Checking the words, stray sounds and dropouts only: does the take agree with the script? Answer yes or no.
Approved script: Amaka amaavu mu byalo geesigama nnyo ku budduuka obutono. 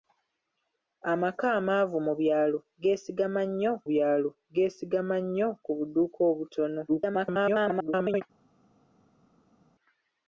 no